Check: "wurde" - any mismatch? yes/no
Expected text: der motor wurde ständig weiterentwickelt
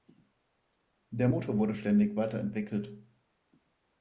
no